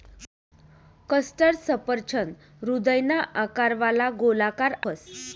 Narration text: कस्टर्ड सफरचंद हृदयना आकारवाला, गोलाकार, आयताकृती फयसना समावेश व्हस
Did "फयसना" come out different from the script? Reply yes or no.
yes